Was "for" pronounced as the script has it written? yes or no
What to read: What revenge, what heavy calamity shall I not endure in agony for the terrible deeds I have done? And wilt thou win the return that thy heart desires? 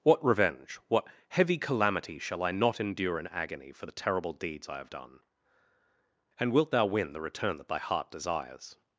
yes